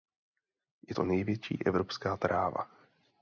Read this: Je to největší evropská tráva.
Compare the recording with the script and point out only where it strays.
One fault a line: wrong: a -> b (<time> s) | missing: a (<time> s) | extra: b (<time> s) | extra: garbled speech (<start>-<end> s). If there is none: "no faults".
no faults